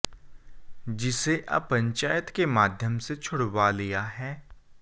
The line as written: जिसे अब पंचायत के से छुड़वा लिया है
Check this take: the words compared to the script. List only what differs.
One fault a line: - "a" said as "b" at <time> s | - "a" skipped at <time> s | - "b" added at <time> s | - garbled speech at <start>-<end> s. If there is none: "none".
- "माध्यम" added at 2.5 s